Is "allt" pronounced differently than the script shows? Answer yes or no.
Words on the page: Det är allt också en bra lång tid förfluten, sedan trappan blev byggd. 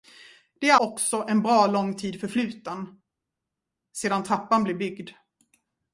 yes